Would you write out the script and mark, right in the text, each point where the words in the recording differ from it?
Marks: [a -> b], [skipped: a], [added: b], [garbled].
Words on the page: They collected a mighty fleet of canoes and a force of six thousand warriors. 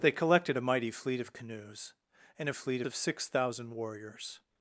They collected a mighty fleet of canoes and a [force -> fleet] of six thousand warriors.